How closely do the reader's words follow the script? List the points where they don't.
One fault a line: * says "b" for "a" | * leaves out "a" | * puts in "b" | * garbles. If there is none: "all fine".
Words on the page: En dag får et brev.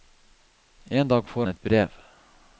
all fine